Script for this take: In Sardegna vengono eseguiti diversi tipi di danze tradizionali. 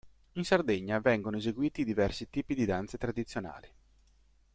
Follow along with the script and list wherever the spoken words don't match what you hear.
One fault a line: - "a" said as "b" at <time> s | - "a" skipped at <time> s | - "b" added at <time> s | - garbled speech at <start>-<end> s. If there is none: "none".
none